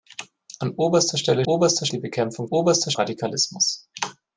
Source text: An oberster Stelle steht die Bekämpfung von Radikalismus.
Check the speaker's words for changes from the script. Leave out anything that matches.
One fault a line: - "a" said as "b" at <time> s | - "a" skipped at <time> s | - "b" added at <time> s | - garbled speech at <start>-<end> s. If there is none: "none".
- "steht" said as "oberster" at 1.5 s
- "von" said as "oberster" at 2.5 s